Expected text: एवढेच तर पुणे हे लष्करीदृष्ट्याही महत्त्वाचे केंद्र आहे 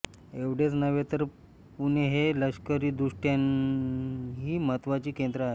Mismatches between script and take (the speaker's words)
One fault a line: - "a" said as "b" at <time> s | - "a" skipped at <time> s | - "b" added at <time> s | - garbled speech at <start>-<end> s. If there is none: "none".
- "नव्हे" added at 0.7 s